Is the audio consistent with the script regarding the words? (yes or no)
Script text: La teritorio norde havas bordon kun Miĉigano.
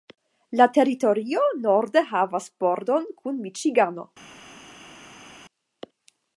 yes